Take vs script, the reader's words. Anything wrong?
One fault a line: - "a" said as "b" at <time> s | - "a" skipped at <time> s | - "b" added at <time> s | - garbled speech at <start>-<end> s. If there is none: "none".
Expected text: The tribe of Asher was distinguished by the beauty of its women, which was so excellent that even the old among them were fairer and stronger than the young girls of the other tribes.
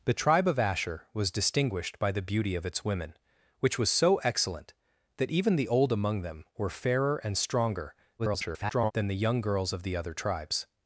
- garbled speech at 8.2-8.9 s